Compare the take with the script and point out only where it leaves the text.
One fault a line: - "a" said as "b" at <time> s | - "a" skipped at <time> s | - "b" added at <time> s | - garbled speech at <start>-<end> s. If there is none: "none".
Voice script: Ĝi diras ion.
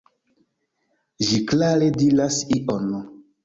- "klare" added at 1.5 s